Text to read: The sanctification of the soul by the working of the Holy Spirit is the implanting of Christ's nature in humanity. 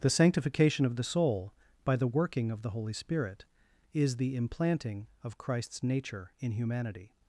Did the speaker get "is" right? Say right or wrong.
right